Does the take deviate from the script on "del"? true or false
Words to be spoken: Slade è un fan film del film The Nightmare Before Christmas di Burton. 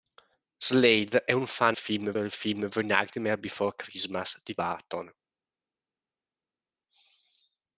false